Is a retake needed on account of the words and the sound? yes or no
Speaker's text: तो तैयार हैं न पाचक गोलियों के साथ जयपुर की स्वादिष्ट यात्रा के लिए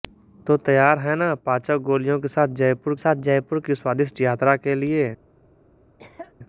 yes